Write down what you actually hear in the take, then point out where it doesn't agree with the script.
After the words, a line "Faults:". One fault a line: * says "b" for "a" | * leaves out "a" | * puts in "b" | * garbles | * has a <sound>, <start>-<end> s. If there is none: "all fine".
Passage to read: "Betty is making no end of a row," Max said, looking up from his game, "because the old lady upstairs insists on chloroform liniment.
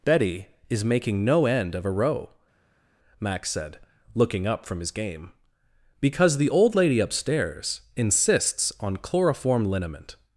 "Betty is making no end of a row," Max said, looking up from his game, "because the old lady upstairs insists on chloroform liniment.
Faults:
all fine